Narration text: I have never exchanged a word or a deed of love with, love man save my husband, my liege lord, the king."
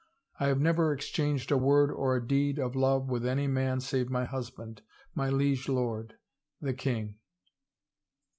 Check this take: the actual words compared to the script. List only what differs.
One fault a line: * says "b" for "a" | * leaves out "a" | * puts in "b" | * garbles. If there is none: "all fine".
* says "any" for "love"